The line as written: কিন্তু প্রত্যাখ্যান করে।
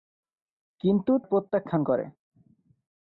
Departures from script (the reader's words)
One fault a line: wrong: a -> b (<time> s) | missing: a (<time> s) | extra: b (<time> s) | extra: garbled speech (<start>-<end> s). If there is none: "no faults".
no faults